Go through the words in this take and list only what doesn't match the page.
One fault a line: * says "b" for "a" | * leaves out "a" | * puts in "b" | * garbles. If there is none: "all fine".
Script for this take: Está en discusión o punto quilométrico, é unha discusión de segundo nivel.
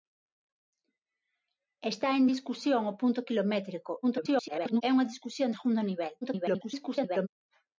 * garbles
* leaves out "de"
* garbles